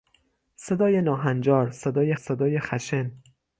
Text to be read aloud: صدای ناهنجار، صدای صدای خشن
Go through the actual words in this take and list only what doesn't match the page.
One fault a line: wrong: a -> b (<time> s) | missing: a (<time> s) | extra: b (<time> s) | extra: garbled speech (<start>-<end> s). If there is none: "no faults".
no faults